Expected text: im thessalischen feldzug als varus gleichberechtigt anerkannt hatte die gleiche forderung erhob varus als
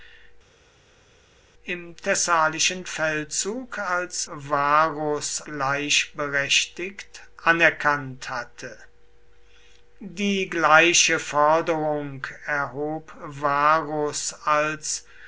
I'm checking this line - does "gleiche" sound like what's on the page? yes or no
yes